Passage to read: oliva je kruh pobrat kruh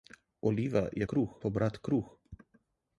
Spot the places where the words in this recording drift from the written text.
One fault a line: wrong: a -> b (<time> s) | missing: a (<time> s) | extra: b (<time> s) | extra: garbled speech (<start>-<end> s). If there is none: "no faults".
no faults